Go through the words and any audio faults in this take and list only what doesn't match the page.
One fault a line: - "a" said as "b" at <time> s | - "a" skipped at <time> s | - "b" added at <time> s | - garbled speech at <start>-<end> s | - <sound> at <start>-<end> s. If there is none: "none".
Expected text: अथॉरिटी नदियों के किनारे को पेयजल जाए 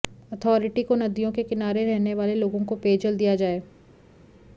- "को" added at 0.8 s
- "रहने वाले लोगों" added at 1.9 s
- "दिया" added at 3.2 s